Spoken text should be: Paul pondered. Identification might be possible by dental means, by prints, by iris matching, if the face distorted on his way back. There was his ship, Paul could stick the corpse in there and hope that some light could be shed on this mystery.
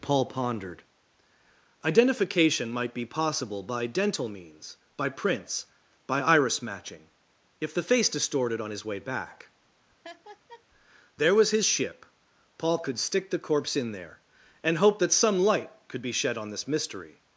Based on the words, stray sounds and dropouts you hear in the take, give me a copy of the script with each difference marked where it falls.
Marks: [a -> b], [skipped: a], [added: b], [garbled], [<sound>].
Paul pondered. Identification might be possible by dental means, by prints, by iris matching, if the face distorted on his way back. [laugh] There was his ship, Paul could stick the corpse in there and hope that some light could be shed on this mystery.